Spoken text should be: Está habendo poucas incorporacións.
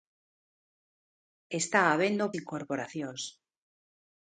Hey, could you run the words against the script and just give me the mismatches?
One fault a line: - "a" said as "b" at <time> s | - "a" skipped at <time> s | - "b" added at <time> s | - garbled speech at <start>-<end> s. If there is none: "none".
- "poucas" skipped at 2.3 s